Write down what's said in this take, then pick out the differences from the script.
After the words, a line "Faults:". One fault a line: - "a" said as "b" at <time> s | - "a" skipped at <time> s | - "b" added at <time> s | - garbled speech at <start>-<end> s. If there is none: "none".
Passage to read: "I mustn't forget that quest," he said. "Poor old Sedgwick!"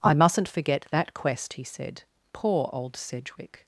"I mustn't forget that quest," he said. "Poor old Sedgwick!"
Faults:
none